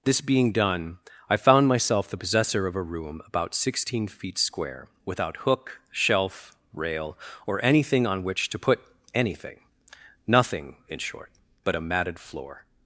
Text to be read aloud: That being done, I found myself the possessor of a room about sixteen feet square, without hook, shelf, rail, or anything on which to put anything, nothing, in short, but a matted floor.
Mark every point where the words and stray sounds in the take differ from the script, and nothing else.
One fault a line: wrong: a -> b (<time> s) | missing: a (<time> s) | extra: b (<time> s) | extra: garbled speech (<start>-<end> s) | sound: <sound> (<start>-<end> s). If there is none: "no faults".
wrong: That -> This (0.0 s)